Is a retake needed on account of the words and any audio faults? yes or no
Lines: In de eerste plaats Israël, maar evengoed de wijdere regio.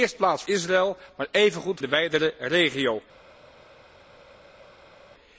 no